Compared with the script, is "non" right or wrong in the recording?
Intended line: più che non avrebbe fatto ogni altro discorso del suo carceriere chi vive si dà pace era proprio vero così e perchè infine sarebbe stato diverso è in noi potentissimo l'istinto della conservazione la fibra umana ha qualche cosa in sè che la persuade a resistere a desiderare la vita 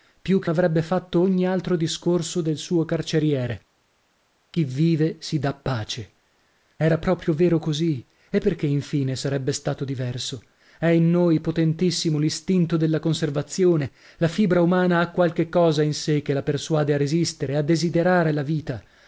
wrong